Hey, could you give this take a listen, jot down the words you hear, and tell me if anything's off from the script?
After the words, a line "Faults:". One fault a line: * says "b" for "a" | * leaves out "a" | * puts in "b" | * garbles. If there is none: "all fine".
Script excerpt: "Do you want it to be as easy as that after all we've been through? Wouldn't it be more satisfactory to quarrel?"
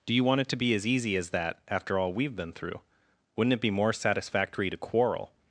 "Do you want it to be as easy as that after all we've been through? Wouldn't it be more satisfactory to quarrel?"
Faults:
all fine